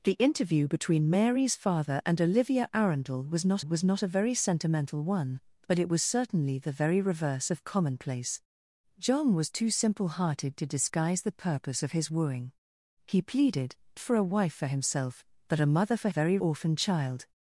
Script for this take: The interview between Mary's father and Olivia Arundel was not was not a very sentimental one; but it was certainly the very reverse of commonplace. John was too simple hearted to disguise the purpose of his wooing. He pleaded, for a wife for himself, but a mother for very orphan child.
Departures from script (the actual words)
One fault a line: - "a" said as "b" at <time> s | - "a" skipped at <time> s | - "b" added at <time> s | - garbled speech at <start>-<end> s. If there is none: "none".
none